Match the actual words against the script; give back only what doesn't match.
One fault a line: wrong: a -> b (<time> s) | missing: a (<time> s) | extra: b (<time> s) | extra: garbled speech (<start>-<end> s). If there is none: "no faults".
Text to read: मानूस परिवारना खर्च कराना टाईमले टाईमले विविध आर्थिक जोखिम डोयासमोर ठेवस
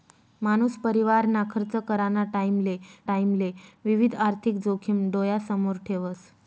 no faults